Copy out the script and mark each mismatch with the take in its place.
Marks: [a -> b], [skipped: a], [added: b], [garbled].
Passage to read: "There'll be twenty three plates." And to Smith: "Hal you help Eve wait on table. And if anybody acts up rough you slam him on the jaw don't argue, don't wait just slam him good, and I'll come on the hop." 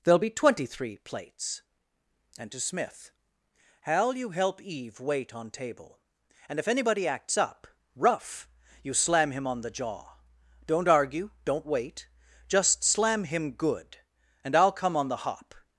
"There'll be twenty three plates." And to Smith: "Hal you help Eve wait on table. And if anybody acts up rough you slam him on the jaw don't argue, don't wait just slam him good, and I'll come on the hop."